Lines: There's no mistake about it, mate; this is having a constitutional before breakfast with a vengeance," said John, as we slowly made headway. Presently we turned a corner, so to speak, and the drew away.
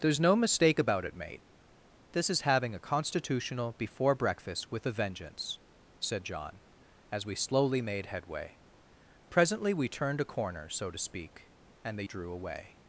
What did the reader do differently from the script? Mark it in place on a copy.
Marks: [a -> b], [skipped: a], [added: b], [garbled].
There's no mistake about it, mate; this is having a constitutional before breakfast with a vengeance," said John, as we slowly made headway. Presently we turned a corner, so to speak, and the drew away.